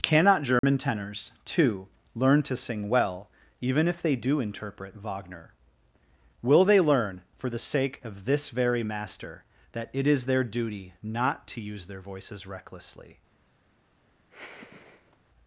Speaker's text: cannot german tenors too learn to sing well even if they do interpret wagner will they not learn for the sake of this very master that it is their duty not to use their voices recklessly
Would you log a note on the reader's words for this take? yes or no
yes